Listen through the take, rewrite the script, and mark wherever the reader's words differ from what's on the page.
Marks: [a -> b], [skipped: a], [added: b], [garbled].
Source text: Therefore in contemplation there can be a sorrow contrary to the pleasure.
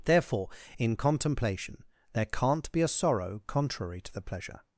Therefore in contemplation there [can -> can't] be a sorrow contrary to the pleasure.